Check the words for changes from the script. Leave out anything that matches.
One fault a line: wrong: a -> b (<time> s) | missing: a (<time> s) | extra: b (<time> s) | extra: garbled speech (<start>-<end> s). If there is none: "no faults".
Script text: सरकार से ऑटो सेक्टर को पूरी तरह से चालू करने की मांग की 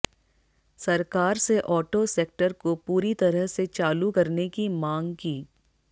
no faults